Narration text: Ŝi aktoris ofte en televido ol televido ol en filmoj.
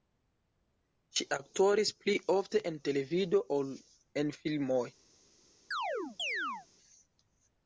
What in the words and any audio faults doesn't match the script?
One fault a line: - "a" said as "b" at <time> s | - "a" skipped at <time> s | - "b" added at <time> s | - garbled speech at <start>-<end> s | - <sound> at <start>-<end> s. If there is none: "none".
- "pli" added at 2.0 s
- "televido ol" skipped at 3.7 s
- chirp at 5.7-6.7 s